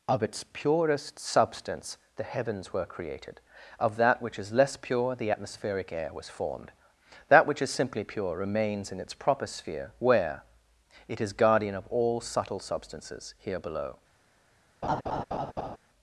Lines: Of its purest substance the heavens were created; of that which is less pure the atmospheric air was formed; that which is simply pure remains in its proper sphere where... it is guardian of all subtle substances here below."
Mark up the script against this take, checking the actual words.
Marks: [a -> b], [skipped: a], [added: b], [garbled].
Of its purest substance the heavens were created; of that which is less pure the atmospheric air was formed; that which is simply pure remains in its proper sphere where... it is guardian of all subtle substances here below."